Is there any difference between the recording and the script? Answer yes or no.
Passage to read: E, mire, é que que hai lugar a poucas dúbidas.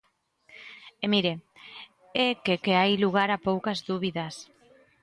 no